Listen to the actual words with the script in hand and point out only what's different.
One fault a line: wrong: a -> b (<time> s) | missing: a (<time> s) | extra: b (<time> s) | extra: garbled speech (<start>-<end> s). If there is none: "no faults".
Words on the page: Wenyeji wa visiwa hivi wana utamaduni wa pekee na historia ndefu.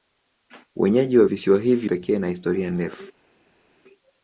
missing: wana utamaduni wa (1.9 s)